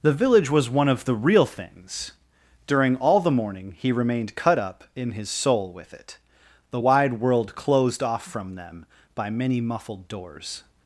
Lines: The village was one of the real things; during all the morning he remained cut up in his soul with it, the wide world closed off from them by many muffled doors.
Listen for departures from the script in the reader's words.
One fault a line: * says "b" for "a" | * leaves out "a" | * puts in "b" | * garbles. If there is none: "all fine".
all fine